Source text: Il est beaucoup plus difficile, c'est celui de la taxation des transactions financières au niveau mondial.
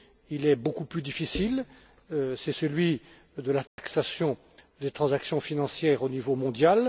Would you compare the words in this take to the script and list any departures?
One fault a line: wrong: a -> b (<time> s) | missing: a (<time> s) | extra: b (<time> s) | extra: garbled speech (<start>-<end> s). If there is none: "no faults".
no faults